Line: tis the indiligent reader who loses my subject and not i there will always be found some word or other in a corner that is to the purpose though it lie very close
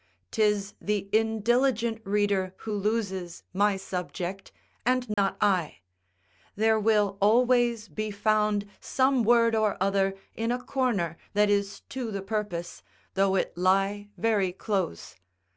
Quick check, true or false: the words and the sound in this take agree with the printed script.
false